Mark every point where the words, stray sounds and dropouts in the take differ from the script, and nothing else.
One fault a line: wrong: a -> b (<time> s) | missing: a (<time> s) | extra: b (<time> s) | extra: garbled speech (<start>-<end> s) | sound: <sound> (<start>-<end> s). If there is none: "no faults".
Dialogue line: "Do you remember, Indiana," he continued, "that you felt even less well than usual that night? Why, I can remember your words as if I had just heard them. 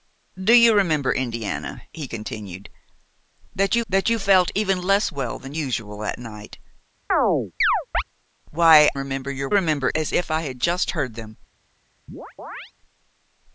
extra: that you (3.9 s)
sound: chirp (7.1-8.0 s)
missing: I can (8.9 s)
wrong: words -> remember (9.5 s)
sound: chirp (12.1-12.7 s)